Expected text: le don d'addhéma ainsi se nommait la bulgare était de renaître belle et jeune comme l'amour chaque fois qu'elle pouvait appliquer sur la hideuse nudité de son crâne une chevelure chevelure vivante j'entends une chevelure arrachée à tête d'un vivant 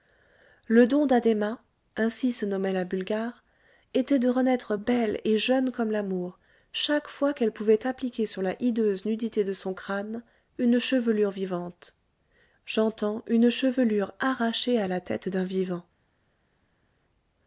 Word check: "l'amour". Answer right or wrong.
right